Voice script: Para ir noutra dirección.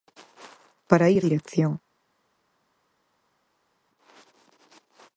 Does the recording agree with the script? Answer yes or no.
no